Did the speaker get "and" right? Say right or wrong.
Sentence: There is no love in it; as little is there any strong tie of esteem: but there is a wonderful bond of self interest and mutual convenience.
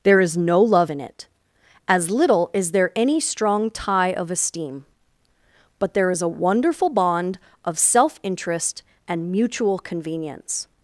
right